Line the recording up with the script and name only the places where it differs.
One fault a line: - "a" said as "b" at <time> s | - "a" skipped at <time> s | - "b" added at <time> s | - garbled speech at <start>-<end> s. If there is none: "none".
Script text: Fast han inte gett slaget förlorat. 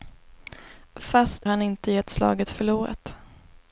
none